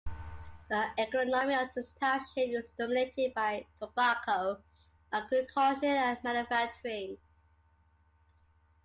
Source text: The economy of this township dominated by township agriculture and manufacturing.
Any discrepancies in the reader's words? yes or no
yes